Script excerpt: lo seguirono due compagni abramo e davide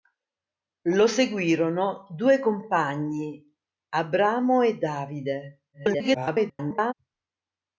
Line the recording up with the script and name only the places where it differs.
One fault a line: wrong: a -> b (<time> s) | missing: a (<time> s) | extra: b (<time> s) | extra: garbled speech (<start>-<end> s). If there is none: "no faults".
extra: garbled speech (5.7-6.9 s)